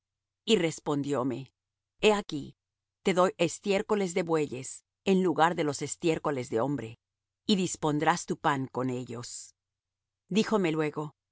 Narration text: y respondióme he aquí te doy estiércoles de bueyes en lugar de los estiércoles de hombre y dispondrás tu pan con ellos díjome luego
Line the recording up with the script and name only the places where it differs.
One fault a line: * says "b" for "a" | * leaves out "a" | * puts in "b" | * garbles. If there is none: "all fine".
all fine